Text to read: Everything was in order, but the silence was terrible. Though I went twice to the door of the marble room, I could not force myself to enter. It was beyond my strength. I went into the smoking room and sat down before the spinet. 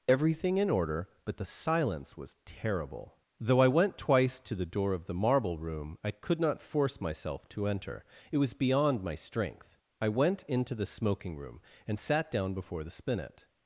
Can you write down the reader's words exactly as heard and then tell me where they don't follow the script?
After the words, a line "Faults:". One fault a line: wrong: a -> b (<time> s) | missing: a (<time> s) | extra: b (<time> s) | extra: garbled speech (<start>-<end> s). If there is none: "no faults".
Everything in order, but the silence was terrible. Though I went twice to the door of the marble room, I could not force myself to enter. It was beyond my strength. I went into the smoking room and sat down before the spinet.
Faults:
missing: was (0.6 s)